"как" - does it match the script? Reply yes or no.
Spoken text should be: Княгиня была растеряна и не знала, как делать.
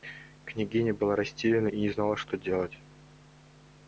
no